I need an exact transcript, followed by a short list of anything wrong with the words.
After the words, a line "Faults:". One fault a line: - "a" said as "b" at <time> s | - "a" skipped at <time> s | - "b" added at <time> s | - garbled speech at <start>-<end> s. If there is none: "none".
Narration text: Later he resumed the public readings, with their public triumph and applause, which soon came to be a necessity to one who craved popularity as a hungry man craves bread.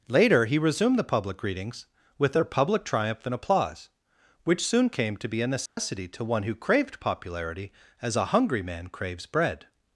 Later he resumed the public readings, with their public triumph and applause, which soon came to be a necessity to one who craved popularity as a hungry man craves bread.
Faults:
none